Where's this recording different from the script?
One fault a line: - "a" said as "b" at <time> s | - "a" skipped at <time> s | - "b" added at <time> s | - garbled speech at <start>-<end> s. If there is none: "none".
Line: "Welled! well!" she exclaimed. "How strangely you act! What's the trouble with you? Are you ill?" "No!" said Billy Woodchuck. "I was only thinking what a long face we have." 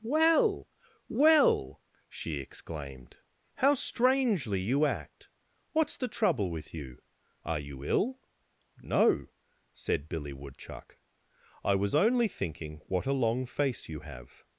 - "Welled" said as "Well" at 0.0 s
- "we" said as "you" at 13.9 s